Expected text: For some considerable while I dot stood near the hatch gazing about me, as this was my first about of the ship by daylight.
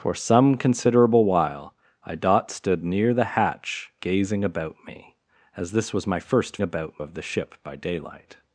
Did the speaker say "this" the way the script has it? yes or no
yes